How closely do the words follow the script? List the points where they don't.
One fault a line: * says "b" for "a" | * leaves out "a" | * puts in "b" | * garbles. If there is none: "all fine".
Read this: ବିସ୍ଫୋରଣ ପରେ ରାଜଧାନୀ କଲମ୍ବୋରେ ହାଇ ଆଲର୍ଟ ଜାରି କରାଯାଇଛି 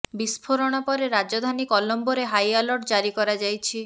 all fine